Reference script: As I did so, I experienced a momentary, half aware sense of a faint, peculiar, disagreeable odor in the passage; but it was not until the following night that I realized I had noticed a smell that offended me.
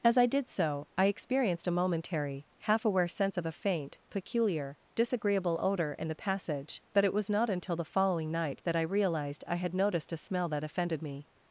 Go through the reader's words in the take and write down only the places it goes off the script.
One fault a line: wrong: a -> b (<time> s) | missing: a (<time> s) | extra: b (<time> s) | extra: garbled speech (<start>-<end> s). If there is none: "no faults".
no faults